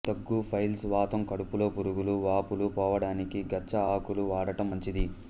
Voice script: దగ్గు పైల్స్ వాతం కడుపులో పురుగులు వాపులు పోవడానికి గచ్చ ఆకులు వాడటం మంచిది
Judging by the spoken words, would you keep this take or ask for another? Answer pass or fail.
pass